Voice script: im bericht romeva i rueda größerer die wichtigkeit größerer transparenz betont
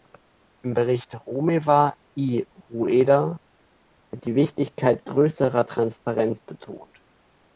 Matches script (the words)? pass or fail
fail